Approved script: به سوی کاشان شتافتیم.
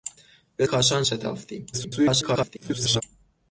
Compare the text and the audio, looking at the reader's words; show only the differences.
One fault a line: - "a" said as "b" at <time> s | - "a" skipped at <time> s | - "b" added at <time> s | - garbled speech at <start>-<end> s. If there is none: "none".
- "سوی" skipped at 0.7 s
- garbled speech at 1.7-3.0 s